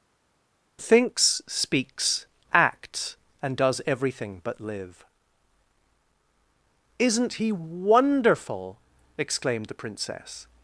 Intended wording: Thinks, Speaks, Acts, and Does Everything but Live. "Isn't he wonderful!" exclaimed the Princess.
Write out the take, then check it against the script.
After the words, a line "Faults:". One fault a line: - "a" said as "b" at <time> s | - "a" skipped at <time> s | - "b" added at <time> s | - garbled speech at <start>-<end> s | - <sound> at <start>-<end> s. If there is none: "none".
Thinks, Speaks, Acts, and Does Everything but Live. "Isn't he wonderful!" exclaimed the Princess.
Faults:
none